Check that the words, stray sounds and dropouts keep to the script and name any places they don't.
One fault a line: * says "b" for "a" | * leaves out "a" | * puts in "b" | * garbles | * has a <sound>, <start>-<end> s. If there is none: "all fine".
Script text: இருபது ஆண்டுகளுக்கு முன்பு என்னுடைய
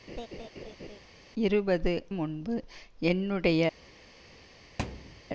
* has a laugh, 0.1-1.0 s
* leaves out "ஆண்டுகளுக்கு"
* has a thud, 4.8-5.2 s